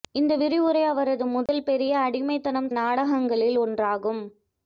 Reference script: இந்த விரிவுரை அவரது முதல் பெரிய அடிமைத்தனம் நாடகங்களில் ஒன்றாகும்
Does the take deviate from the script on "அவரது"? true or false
false